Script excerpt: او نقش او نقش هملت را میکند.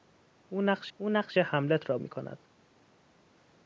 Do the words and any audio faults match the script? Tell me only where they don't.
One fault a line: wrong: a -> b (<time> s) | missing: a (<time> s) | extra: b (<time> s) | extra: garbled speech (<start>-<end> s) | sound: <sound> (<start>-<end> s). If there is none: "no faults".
no faults